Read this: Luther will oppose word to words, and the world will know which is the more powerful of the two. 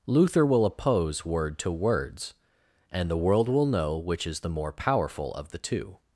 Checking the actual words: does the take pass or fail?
pass